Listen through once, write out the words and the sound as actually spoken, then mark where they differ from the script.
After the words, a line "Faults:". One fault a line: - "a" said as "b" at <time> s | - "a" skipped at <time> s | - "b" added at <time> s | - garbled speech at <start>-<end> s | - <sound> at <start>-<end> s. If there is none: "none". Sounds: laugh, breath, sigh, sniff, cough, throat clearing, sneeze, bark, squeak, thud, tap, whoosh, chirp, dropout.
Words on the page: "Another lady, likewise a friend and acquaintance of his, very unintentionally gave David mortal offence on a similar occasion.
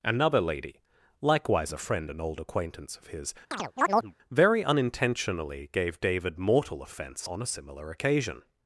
"Another lady, likewise a friend and old acquaintance of his, very unintentionally gave David mortal offence on a similar occasion.
Faults:
- "old" added at 2.2 s
- chirp at 3.5-4.1 s